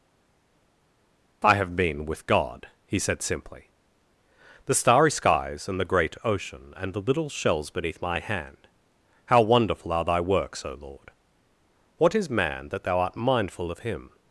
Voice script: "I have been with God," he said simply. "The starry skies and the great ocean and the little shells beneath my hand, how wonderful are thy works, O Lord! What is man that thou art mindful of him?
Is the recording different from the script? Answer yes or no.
no